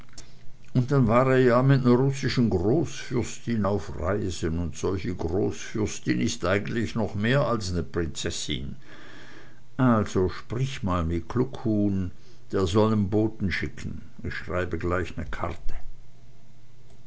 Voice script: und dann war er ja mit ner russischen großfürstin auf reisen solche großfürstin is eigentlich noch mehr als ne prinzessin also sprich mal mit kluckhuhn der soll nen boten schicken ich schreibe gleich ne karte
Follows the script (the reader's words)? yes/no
no